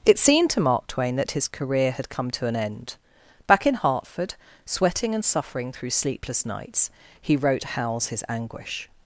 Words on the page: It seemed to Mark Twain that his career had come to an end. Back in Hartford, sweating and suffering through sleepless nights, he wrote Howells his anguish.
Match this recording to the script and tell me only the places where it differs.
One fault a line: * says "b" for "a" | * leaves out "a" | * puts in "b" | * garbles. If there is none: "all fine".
all fine